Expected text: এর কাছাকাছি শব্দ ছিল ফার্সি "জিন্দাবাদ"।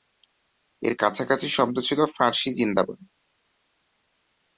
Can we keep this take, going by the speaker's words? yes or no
yes